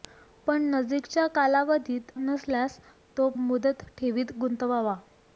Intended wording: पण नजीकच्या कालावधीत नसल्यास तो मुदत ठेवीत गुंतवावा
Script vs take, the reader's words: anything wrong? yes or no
no